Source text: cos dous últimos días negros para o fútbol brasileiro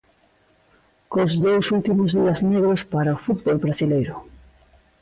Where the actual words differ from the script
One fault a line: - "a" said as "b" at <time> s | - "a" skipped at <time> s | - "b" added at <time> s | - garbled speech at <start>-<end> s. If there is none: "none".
none